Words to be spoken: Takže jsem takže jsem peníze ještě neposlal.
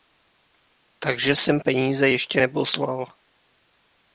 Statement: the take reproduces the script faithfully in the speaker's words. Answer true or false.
false